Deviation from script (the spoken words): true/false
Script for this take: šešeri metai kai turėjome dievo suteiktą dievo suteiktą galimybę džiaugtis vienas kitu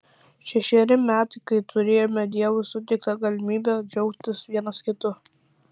true